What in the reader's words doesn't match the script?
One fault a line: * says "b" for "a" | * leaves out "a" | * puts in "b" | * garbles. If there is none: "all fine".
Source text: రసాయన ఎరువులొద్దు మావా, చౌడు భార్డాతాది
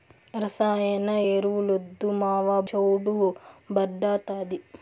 all fine